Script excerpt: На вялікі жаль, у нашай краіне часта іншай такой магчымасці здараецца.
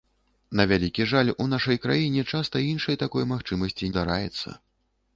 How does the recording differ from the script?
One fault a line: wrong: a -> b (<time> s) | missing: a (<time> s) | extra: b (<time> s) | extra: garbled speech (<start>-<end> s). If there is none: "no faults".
no faults